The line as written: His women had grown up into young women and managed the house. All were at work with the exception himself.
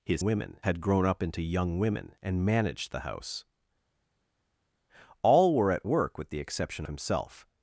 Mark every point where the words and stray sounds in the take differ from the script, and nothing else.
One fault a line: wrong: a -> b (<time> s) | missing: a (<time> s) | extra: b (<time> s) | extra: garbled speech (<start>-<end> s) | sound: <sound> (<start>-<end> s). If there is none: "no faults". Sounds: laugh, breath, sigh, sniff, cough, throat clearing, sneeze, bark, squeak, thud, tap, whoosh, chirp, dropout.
no faults